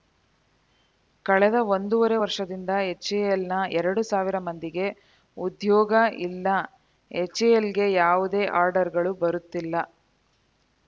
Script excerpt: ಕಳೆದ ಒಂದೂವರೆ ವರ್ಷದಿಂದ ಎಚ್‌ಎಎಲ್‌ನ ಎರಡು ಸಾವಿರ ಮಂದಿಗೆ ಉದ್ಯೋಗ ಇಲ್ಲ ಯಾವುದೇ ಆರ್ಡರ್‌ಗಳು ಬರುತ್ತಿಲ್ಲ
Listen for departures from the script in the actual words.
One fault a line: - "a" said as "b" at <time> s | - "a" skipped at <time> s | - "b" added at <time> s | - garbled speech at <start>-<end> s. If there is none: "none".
- "ಎಚ್‌ಎಎಲ್‌ಗೆ" added at 7.1 s